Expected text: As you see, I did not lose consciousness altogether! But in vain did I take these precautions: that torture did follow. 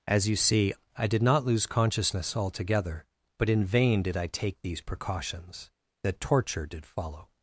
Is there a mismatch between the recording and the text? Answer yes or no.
no